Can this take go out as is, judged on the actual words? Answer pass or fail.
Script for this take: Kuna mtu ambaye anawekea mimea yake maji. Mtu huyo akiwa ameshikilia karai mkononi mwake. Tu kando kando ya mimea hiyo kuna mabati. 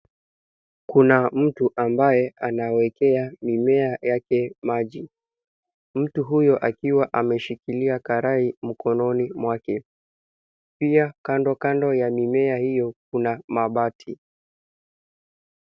fail